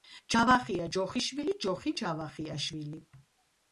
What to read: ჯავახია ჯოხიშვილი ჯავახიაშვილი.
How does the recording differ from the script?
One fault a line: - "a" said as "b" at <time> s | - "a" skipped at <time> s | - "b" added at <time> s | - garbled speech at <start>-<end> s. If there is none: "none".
- "ჯოხი" added at 1.7 s